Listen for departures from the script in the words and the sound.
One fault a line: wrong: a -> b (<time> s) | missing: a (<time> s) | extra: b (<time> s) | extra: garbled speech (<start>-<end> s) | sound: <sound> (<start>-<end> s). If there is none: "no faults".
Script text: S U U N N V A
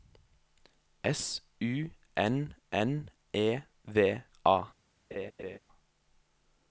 wrong: U -> N (2.2 s)
wrong: N -> E (3.3 s)
sound: laugh (5.1-5.6 s)